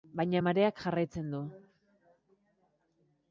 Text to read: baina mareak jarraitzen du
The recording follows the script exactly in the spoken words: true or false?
true